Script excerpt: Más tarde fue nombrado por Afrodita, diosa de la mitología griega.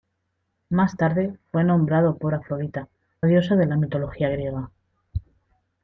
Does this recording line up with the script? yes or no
yes